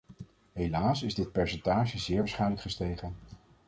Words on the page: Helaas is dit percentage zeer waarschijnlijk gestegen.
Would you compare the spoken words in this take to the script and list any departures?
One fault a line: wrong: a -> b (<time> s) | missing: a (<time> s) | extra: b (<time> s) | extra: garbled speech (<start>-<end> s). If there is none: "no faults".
no faults